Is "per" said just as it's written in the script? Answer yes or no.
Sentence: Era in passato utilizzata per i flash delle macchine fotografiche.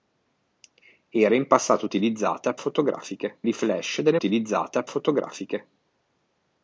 no